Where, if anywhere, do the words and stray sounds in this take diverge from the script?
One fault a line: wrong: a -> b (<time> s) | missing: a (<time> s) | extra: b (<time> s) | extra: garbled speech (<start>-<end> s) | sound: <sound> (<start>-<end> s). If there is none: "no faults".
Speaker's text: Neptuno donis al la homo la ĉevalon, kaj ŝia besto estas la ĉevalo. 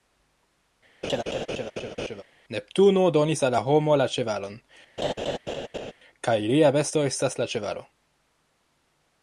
sound: laugh (1.0-2.2 s)
sound: laugh (5.0-5.9 s)
wrong: ŝia -> lia (6.4 s)